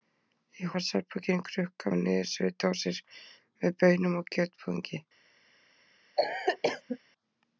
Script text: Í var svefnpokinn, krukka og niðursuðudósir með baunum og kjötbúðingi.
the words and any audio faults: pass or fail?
fail